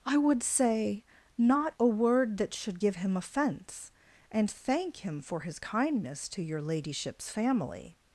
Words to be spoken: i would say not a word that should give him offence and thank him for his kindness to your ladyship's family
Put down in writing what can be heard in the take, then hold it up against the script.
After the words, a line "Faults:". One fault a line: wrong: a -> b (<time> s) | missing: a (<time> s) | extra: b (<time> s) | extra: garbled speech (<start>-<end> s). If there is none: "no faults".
i would say not a word that should give him offence and thank him for his kindness to your ladyship's family
Faults:
no faults